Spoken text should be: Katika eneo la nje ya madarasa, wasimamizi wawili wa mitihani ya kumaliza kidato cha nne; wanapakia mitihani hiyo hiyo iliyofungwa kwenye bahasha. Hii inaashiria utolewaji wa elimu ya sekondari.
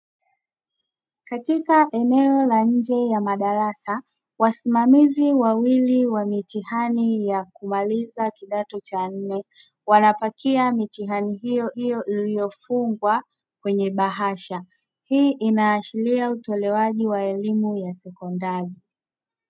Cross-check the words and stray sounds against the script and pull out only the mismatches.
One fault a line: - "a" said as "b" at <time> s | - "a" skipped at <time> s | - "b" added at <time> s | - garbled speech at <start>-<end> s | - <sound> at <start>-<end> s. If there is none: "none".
none